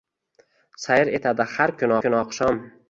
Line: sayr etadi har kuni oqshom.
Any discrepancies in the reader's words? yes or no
yes